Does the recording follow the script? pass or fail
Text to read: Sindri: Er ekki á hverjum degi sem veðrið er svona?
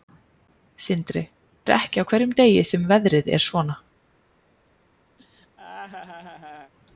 pass